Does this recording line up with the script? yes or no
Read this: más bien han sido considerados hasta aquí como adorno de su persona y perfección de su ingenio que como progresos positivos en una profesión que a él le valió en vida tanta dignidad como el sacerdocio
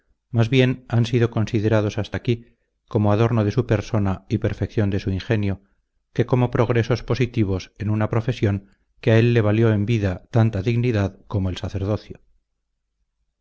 yes